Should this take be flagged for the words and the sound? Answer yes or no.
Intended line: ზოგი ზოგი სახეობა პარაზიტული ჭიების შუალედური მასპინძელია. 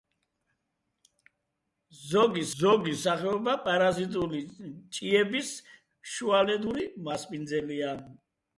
no